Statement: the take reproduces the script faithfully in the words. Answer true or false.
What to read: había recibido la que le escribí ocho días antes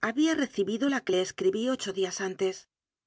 true